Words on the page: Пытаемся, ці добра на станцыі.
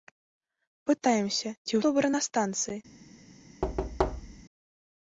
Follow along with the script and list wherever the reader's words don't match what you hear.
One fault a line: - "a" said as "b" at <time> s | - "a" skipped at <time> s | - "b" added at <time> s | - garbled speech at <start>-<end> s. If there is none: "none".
none